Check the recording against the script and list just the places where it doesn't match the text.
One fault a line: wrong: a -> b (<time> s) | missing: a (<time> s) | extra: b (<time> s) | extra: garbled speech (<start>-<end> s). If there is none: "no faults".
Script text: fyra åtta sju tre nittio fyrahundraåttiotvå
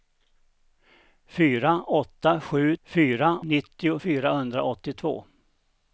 wrong: tre -> fyra (2.8 s)